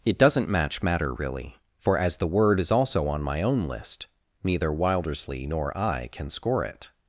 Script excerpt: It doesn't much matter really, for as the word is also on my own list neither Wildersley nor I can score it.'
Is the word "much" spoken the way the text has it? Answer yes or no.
no